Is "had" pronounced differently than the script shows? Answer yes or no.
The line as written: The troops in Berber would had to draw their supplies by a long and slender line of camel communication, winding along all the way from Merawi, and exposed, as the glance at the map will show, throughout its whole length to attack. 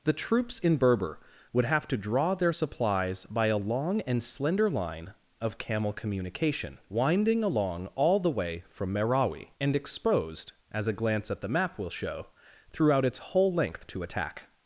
yes